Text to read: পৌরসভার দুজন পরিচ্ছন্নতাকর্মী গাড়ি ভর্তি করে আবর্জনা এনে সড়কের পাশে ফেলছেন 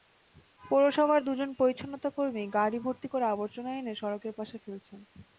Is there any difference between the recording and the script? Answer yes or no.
no